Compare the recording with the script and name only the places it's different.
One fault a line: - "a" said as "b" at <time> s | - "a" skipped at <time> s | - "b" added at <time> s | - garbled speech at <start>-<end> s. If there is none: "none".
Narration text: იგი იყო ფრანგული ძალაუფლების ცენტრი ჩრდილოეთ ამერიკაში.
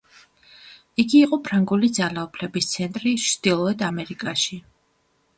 none